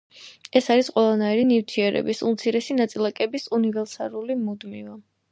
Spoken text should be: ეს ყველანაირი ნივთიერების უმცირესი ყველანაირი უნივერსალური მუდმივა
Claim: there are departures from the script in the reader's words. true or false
true